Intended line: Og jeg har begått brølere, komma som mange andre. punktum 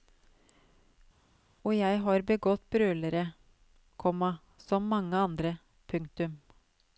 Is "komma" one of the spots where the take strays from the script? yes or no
no